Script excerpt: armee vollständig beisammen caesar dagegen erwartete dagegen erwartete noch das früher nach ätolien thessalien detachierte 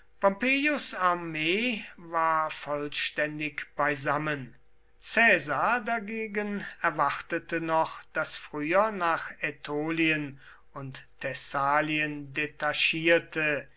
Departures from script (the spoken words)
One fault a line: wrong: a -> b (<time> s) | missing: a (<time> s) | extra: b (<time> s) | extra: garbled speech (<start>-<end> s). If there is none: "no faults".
extra: war (1.9 s)
missing: dagegen erwartete (7.6 s)
extra: und (10.7 s)